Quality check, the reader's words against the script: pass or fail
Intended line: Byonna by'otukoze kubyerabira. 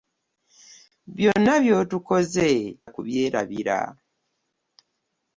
pass